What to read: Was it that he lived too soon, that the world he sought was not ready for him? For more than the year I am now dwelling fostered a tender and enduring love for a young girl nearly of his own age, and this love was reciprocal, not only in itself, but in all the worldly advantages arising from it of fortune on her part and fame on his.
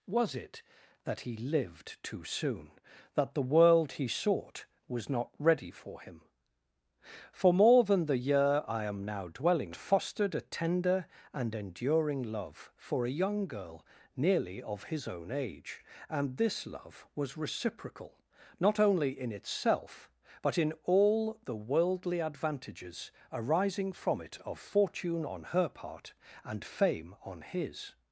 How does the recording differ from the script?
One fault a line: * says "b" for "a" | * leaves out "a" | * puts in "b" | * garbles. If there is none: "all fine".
all fine